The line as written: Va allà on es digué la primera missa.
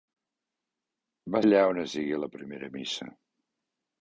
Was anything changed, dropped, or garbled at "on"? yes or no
no